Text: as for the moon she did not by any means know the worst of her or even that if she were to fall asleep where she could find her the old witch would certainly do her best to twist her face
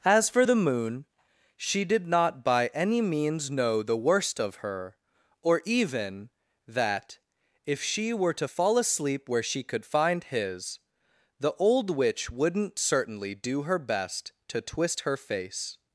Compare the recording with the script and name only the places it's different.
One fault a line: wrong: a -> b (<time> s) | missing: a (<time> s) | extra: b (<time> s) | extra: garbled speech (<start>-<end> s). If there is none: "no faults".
wrong: her -> his (10.2 s)
wrong: would -> wouldn't (12.3 s)